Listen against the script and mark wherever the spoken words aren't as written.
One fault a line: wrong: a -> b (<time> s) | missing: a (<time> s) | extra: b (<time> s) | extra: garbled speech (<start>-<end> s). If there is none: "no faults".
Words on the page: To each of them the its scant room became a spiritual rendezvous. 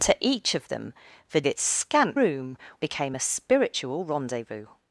no faults